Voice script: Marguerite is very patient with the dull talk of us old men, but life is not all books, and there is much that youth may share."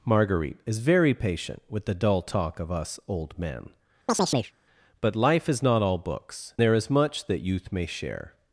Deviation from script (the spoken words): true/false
true